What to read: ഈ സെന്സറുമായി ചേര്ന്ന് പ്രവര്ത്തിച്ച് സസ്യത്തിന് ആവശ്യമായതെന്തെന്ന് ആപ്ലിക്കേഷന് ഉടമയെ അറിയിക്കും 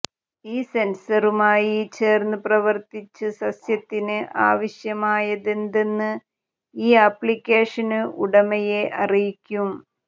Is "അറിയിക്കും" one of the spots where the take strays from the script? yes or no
no